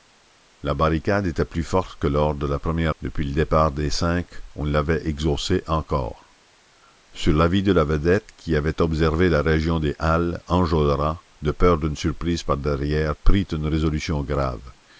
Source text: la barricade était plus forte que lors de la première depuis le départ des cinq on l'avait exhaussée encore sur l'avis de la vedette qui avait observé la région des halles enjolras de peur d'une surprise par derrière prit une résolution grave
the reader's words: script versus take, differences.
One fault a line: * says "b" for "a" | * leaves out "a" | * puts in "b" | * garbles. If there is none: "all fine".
all fine